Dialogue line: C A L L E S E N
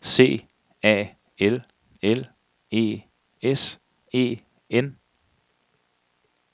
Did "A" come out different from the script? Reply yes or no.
no